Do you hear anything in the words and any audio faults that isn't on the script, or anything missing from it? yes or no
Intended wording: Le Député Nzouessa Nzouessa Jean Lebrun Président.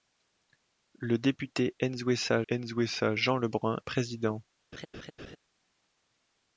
yes